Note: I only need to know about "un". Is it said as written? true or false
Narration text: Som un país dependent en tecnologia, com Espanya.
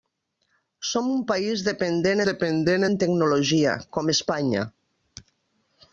true